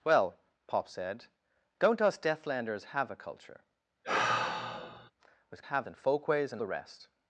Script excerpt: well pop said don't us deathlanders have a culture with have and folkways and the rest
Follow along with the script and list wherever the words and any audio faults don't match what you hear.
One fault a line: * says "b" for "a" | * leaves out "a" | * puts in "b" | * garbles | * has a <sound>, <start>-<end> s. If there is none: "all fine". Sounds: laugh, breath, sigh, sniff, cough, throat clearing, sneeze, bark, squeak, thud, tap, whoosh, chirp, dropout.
* has a sigh, 4.0-5.1 s